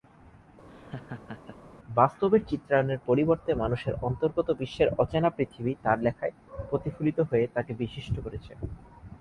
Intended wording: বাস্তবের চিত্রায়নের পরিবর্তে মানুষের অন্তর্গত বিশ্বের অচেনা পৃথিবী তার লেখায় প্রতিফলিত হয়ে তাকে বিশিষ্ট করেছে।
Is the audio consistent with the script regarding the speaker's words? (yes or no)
yes